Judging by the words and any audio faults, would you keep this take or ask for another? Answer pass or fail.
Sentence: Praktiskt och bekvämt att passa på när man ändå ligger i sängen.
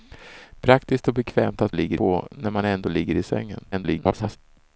fail